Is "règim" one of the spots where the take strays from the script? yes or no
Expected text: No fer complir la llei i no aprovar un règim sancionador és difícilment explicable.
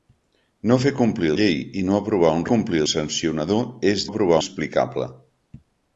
yes